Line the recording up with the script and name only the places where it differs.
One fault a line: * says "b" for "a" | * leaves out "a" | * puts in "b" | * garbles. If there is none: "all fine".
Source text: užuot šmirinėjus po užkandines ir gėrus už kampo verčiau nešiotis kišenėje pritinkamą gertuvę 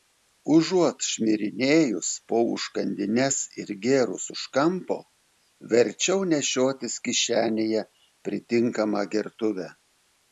all fine